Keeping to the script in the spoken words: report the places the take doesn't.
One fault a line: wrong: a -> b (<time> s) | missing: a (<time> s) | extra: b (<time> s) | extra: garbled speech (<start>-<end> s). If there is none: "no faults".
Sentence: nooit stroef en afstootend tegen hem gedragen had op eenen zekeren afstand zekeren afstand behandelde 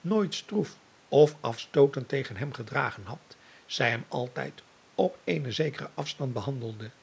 wrong: en -> of (1.1 s)
extra: zij hem altijd (3.6 s)
missing: zekeren afstand (6.3 s)